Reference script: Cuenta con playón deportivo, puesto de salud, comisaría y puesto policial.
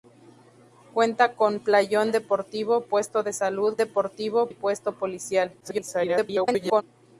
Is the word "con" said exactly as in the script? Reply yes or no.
yes